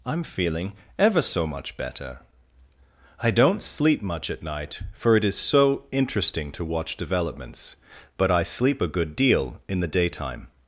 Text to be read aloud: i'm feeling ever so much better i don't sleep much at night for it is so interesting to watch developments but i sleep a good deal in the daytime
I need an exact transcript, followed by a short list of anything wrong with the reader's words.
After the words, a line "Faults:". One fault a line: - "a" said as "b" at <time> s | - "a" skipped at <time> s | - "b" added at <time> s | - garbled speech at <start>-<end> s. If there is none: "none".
i'm feeling ever so much better i don't sleep much at night for it is so interesting to watch developments but i sleep a good deal in the daytime
Faults:
none